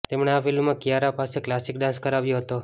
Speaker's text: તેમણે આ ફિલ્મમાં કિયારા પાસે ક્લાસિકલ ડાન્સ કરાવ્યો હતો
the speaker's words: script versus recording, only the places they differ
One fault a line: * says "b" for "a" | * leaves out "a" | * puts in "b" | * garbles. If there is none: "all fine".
all fine